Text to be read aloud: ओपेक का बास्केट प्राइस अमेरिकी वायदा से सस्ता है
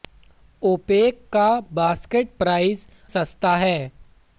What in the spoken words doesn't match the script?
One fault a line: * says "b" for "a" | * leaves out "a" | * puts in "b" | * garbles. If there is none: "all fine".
* leaves out "अमेरिकी वायदा से"